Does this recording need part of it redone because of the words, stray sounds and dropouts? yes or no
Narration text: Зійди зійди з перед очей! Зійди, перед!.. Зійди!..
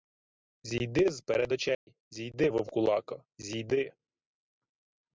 yes